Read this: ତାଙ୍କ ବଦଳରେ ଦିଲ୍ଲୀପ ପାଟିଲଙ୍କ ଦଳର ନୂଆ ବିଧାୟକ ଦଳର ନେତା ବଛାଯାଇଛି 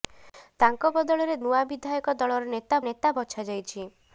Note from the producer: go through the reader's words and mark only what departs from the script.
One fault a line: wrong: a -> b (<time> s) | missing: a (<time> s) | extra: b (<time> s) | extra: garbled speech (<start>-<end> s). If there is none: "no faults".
missing: ଦିଲ୍ଲୀପ ପାଟିଲଙ୍କ ଦଳର (1.4 s)
extra: ନେତା (2.8 s)